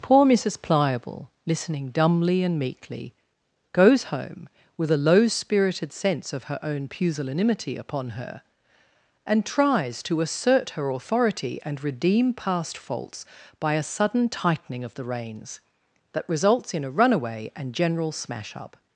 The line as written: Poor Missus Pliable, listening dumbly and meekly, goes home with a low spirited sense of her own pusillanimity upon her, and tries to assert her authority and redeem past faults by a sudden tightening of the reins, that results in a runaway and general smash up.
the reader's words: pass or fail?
pass